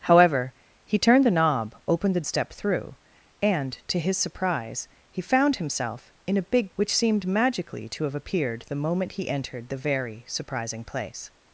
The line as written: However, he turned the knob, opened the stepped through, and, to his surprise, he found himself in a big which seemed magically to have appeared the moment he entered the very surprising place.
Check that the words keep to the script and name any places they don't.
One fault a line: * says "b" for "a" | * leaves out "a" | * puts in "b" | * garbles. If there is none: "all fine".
all fine